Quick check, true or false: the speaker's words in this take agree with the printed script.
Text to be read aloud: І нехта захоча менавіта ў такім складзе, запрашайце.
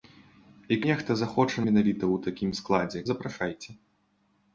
true